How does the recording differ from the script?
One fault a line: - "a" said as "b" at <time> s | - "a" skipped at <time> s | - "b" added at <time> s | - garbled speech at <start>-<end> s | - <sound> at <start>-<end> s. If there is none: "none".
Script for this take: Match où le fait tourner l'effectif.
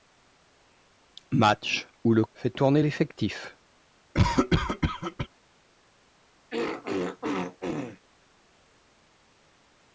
- cough at 4.1-5.3 s
- throat clearing at 6.5-8.0 s